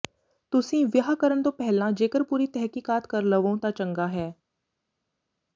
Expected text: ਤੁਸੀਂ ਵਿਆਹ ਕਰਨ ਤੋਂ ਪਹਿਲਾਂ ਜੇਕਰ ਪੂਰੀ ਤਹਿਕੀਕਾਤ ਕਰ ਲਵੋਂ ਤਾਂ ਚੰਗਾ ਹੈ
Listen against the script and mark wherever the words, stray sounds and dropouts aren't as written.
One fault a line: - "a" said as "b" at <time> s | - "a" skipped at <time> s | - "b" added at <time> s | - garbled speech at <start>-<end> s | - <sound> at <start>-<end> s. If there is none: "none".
none